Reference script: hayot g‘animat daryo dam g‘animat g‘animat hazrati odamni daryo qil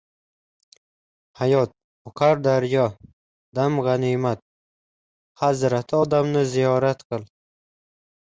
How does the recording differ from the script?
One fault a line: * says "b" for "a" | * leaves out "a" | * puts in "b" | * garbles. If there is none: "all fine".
* says "oqar" for "g‘animat"
* leaves out "g‘animat"
* says "ziyorat" for "daryo"